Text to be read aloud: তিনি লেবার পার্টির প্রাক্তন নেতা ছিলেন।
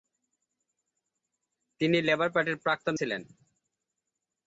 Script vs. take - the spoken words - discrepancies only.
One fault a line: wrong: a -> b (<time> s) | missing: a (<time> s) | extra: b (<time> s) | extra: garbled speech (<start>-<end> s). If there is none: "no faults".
missing: নেতা (3.0 s)